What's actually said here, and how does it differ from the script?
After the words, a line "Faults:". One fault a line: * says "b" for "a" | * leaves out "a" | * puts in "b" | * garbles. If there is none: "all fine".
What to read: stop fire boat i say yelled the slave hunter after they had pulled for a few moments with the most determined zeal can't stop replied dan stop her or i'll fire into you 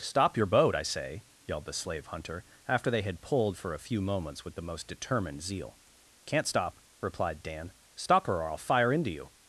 stop your boat i say yelled the slave hunter after they had pulled for a few moments with the most determined zeal can't stop replied dan stop her or i'll fire into you
Faults:
* says "your" for "fire"